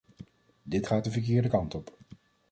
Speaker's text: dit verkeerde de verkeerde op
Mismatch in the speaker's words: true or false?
true